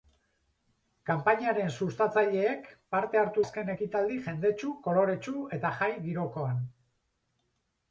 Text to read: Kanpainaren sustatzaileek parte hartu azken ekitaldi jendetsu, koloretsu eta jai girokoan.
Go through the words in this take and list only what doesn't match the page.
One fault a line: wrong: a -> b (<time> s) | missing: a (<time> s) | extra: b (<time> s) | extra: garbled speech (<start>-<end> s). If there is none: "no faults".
no faults